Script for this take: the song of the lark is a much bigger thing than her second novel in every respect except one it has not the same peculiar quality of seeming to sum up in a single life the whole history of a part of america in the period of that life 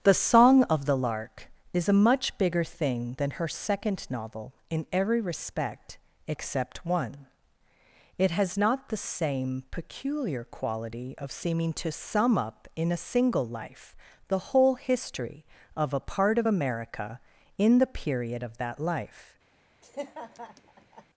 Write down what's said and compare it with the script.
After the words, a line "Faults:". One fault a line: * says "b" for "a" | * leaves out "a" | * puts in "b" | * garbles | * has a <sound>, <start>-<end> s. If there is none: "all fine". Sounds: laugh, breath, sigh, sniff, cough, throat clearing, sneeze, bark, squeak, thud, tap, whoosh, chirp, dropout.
the song of the lark is a much bigger thing than her second novel in every respect except one it has not the same peculiar quality of seeming to sum up in a single life the whole history of a part of america in the period of that life
Faults:
* has a laugh, 19.8-21.0 s